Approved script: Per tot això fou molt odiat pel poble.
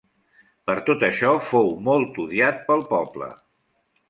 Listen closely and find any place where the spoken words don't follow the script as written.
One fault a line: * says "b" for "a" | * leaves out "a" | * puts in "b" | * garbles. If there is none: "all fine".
all fine